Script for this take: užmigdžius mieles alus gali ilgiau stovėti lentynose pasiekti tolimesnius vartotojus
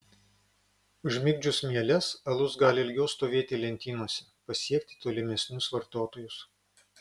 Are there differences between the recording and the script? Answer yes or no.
no